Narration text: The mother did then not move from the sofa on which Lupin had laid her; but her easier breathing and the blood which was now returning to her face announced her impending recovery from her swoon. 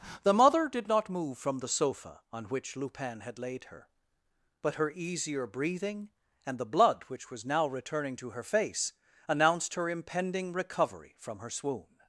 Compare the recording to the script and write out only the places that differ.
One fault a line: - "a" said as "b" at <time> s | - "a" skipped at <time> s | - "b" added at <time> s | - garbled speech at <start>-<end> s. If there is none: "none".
- "then" skipped at 0.9 s